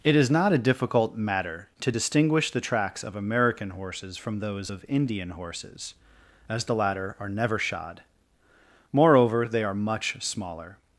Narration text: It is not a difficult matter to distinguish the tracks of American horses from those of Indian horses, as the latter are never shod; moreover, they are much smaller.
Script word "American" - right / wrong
right